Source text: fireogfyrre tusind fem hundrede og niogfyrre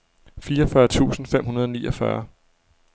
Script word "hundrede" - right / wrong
right